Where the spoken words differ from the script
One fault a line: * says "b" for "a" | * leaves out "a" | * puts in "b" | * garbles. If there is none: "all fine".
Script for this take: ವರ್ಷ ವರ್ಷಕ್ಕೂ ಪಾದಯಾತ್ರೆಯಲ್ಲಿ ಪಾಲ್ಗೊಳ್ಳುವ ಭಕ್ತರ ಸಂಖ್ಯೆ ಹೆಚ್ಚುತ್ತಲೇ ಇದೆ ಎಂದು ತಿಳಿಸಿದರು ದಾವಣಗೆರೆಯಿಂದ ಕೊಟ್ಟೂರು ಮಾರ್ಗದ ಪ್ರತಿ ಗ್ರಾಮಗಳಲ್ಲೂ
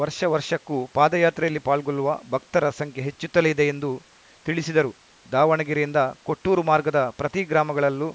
all fine